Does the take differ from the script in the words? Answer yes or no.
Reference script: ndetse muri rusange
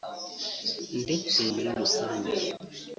no